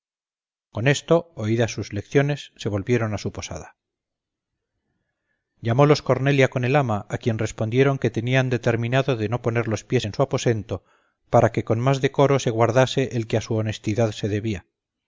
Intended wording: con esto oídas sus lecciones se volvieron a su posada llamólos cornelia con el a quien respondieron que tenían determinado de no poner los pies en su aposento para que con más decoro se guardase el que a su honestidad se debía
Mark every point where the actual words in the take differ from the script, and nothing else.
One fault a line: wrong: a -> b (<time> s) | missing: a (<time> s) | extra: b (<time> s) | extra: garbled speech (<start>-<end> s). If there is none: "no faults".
extra: ama (6.8 s)